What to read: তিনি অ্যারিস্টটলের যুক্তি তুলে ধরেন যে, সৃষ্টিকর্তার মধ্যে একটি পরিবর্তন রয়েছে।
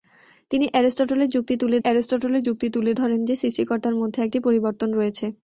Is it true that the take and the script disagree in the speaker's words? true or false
true